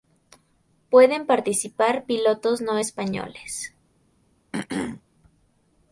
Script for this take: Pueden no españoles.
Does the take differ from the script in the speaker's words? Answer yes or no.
yes